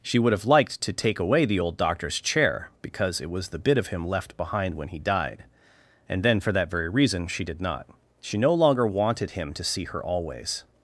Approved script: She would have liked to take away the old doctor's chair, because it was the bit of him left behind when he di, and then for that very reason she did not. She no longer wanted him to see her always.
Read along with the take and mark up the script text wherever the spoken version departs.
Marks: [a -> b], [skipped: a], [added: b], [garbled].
She would have liked to take away the old doctor's chair, because it was the bit of him left behind when he [di, -> died] and then for that very reason she did not. She no longer wanted him to see her always.